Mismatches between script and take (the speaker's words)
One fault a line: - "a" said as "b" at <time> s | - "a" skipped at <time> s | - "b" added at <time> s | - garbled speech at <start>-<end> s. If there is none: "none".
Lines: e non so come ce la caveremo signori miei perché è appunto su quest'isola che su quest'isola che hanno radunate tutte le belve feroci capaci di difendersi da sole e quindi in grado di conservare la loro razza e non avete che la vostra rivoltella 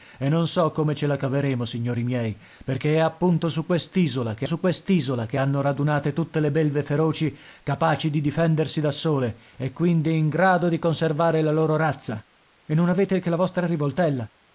none